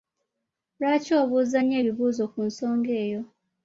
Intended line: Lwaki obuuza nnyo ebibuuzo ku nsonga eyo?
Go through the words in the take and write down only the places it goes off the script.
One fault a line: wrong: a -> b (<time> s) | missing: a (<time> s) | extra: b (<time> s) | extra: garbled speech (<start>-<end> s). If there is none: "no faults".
no faults